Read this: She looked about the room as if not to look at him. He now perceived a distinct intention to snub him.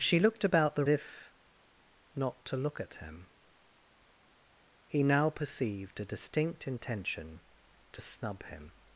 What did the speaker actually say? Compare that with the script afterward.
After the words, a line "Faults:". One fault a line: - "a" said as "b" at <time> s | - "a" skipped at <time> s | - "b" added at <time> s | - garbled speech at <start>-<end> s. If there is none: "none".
She looked about the if not to look at him. He now perceived a distinct intention to snub him.
Faults:
- "room as" skipped at 0.8 s